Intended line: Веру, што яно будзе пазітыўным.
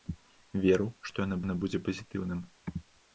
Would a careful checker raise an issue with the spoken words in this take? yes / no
yes